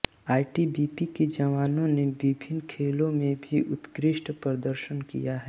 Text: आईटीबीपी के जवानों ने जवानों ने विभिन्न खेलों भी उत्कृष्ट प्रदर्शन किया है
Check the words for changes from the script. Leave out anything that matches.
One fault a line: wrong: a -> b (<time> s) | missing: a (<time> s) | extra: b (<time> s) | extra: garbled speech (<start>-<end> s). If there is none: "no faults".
missing: जवानों ने (2.0 s)
extra: में (3.1 s)